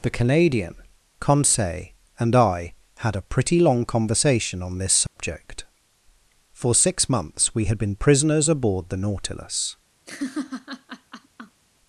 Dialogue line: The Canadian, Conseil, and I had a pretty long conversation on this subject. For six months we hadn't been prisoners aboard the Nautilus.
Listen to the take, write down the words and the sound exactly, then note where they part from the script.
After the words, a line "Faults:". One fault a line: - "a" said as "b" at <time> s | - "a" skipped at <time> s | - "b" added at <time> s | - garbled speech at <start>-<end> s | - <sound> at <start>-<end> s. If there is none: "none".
The Canadian, Conseil, and I had a pretty long conversation on this subject. For six months we had been prisoners aboard the Nautilus.
Faults:
- dropout at 5.1-5.2 s
- "hadn't" said as "had" at 7.7 s
- laugh at 10.1-11.6 s